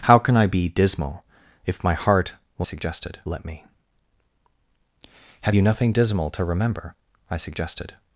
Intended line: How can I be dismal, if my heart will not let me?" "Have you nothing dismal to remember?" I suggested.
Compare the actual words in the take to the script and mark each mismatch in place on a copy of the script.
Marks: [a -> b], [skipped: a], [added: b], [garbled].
How can I be dismal, if my heart will [not -> suggested] let me?" "Have you nothing dismal to remember?" I suggested.